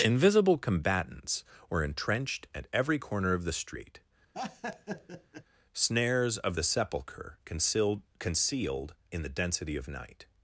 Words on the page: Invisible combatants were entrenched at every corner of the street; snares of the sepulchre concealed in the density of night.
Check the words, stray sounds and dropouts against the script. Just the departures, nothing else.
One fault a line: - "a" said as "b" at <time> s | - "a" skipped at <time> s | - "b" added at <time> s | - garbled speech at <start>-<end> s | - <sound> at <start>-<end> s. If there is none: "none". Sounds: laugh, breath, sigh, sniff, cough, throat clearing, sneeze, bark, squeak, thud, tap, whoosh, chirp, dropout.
- laugh at 4.3-5.4 s
- "concealed" added at 8.2 s